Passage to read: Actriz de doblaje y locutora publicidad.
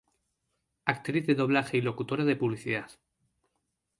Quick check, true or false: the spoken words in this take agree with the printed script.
false